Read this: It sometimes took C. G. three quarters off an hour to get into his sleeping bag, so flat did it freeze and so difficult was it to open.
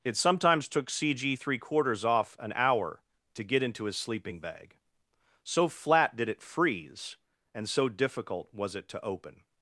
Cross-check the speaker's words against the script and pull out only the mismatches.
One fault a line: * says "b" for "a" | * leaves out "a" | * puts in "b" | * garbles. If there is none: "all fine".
all fine